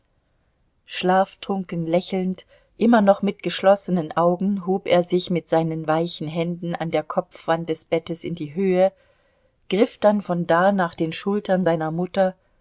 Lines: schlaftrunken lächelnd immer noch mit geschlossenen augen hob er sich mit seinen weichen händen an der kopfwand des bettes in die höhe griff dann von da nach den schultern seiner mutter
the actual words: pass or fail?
pass